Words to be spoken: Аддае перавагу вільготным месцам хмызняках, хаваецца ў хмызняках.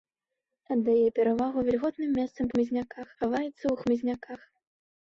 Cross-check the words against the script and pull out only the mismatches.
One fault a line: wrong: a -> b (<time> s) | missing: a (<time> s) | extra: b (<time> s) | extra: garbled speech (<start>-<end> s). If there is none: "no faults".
no faults